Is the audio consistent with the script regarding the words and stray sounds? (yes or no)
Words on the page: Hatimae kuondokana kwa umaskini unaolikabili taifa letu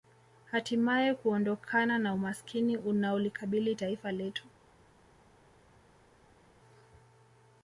no